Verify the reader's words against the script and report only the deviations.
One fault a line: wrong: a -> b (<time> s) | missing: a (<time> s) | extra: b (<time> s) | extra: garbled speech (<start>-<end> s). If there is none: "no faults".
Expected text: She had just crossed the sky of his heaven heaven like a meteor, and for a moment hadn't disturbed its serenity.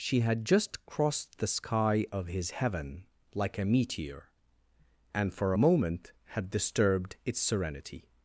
missing: heaven (3.0 s)
wrong: hadn't -> had (6.4 s)